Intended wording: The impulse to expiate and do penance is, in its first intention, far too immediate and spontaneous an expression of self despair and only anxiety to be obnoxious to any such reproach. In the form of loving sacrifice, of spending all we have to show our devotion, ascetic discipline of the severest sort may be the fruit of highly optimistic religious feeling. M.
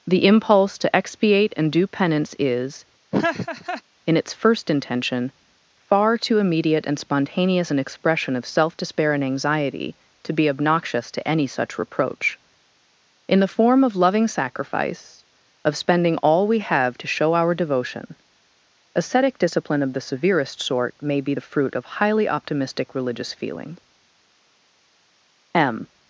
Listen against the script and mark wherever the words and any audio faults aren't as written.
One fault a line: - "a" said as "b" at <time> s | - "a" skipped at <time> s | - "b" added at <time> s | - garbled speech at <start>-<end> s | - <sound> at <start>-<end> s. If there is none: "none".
- laugh at 3.1-3.8 s
- "only" skipped at 9.2 s